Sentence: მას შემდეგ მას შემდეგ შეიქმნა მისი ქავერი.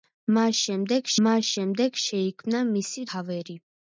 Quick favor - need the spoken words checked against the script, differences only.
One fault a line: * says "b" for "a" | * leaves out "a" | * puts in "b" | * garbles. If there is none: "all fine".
all fine